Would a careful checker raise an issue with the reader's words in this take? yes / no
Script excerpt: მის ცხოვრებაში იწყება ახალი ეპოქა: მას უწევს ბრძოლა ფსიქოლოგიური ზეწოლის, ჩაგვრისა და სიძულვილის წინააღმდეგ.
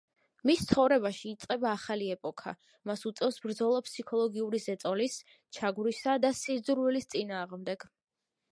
no